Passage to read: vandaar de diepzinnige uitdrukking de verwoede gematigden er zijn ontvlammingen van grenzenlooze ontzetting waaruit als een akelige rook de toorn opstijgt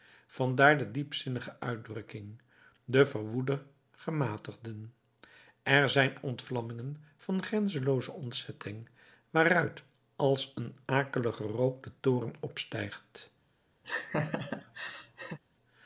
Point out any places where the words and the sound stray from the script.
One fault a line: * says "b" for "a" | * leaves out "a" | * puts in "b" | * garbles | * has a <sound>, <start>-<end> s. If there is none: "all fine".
* has a laugh, 13.8-15.4 s